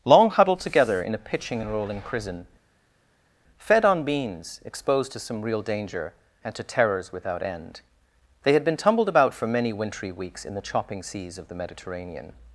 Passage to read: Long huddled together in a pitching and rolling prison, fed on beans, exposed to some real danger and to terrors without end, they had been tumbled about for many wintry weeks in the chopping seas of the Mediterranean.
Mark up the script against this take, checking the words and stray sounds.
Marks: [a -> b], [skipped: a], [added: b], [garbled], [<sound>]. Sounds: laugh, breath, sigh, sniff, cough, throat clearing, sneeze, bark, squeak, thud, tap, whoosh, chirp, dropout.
Long huddled together in a pitching and rolling prison, fed on beans, exposed to some real danger and to terrors without end, they had been tumbled about for many wintry weeks in the chopping seas of the Mediterranean.